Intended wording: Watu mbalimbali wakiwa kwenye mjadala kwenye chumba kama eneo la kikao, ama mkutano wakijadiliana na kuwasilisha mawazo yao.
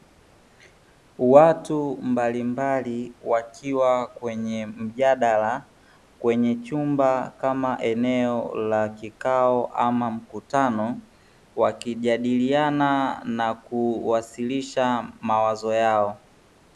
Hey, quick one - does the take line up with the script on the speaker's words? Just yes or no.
yes